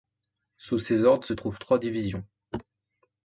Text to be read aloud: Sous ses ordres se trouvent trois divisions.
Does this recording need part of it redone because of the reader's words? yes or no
no